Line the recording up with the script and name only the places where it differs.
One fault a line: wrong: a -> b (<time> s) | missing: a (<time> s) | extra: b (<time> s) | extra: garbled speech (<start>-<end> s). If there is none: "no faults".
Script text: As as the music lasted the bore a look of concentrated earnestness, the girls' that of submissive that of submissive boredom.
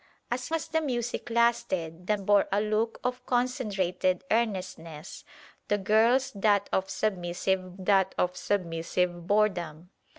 no faults